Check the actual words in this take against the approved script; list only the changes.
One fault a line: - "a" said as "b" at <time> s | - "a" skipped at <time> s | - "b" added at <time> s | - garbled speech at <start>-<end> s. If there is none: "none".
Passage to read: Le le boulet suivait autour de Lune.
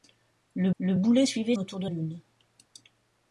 none